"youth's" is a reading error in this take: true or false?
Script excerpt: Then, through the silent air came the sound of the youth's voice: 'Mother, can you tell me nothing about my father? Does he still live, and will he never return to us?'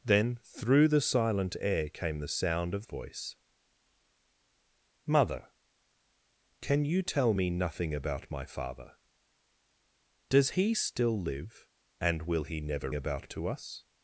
true